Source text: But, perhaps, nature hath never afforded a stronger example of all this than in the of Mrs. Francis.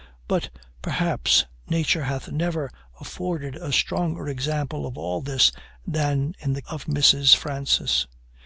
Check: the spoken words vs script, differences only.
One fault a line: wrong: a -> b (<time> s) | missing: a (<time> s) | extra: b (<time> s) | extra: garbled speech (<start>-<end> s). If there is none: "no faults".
no faults